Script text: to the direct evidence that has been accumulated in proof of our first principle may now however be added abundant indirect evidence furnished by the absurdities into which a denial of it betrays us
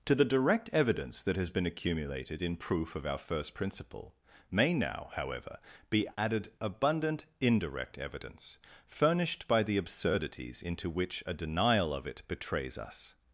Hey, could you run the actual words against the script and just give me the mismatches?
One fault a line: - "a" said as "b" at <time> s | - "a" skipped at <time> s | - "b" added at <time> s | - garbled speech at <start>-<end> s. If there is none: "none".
none